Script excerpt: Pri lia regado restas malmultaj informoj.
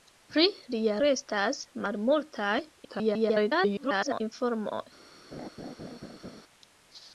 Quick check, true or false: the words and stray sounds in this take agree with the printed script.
false